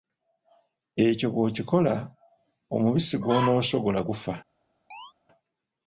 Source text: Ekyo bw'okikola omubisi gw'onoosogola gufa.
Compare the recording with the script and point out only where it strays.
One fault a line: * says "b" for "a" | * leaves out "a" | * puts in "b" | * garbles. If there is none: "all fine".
all fine